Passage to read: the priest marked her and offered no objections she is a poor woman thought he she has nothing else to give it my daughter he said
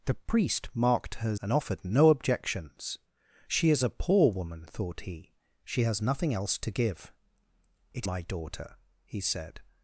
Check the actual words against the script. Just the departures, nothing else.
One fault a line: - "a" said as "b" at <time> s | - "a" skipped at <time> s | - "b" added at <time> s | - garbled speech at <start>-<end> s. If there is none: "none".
none